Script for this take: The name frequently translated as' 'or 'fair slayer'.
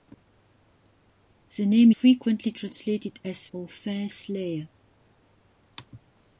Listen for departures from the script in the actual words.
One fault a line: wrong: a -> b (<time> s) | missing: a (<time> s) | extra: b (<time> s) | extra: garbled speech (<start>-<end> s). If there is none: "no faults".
no faults